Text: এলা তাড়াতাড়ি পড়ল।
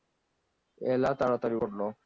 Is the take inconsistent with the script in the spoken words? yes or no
no